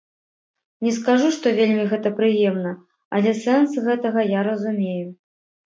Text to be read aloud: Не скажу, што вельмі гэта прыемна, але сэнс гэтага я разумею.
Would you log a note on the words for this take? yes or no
no